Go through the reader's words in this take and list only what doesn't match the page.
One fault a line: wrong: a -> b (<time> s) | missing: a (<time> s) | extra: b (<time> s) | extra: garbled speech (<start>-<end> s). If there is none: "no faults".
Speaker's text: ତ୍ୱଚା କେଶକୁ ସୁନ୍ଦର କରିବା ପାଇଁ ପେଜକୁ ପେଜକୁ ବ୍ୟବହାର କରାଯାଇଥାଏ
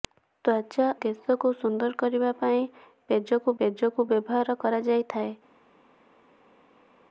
no faults